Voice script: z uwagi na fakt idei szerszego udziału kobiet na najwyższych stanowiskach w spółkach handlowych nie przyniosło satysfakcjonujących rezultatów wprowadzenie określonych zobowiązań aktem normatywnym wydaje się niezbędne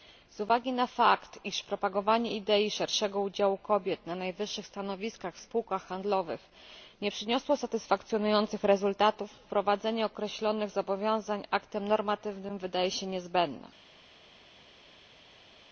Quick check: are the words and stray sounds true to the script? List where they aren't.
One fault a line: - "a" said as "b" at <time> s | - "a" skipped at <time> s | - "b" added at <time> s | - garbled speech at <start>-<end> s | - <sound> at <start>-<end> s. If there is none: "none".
- "iż propagowanie" added at 1.4 s